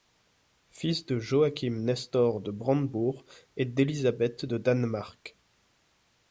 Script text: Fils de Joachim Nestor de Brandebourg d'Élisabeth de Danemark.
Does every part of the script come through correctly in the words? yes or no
no